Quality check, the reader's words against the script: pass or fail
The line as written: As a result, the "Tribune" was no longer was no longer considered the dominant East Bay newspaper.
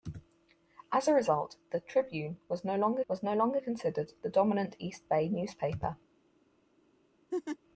pass